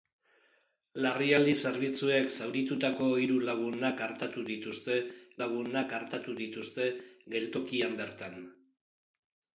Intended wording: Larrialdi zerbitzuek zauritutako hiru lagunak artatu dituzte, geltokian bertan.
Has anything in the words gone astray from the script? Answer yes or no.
yes